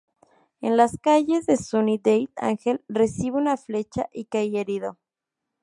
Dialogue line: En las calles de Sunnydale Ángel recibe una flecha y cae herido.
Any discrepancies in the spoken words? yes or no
no